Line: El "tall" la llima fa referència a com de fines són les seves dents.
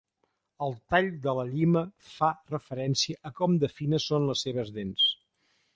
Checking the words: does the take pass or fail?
fail